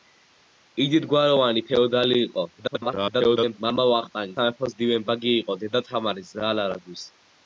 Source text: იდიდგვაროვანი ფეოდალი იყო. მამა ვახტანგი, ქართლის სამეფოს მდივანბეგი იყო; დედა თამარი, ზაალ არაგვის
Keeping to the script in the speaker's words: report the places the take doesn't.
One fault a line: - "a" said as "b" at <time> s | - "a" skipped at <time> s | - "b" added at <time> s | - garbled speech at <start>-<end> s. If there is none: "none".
- garbled speech at 2.6-3.6 s
- "ქართლის" skipped at 4.4 s